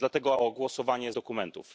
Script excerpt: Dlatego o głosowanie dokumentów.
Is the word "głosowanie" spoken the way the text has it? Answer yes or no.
yes